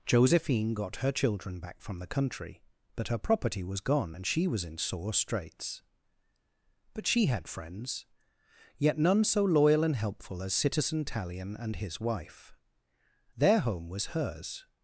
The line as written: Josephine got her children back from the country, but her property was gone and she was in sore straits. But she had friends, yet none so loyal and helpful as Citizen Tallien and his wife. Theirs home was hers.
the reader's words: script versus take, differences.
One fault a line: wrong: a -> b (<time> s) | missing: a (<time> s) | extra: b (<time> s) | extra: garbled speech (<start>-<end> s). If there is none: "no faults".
wrong: Theirs -> Their (13.4 s)